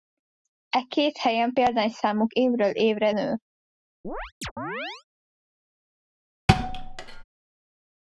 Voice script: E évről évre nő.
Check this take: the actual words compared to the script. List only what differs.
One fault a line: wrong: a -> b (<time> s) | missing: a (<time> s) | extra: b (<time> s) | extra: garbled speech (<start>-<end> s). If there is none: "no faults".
extra: két helyen példányszámuk (0.9 s)